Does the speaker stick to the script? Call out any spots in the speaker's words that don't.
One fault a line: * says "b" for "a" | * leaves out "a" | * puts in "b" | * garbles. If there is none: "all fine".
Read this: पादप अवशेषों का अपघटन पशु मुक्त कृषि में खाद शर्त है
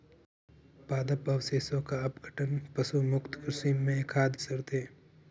all fine